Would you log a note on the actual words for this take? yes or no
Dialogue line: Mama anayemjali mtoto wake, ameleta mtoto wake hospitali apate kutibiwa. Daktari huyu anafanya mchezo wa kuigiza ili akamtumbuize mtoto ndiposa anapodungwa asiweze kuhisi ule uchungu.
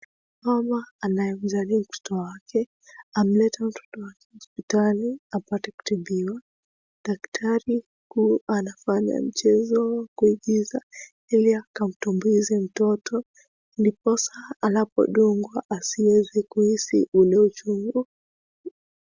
no